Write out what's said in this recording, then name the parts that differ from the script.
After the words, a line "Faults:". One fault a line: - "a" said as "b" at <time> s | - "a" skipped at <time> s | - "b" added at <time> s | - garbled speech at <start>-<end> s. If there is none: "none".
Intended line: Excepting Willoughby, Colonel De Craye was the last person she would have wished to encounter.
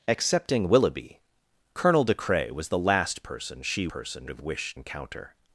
Excepting Willoughby, Colonel De Craye was the last person she person have wished encounter.
Faults:
- "would" said as "person" at 3.9 s
- "to" skipped at 4.7 s